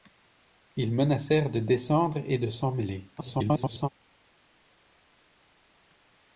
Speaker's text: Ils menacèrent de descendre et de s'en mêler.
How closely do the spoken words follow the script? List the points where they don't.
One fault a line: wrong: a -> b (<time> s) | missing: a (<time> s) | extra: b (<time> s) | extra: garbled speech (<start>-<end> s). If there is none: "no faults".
extra: garbled speech (3.2-3.9 s)